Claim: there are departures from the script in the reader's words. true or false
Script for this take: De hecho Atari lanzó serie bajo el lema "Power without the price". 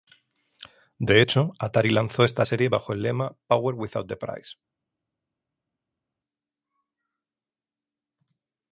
true